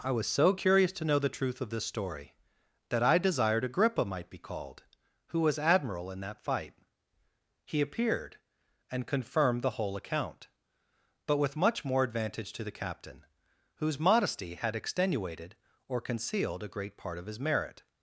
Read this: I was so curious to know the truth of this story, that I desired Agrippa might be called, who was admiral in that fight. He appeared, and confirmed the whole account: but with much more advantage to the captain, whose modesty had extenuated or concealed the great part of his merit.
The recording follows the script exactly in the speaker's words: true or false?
false